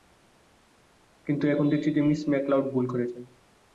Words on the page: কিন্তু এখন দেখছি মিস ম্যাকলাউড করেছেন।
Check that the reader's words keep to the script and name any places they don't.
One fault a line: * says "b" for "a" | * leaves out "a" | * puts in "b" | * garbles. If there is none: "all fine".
* puts in "যে"
* puts in "ভুল"